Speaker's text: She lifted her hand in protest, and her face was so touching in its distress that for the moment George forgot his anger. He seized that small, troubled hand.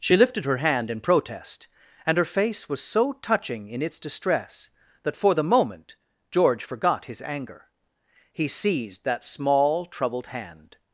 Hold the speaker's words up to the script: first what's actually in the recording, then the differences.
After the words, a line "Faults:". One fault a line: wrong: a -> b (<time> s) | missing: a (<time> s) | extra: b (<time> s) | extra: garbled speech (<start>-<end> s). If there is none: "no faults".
She lifted her hand in protest, and her face was so touching in its distress that for the moment George forgot his anger. He seized that small, troubled hand.
Faults:
no faults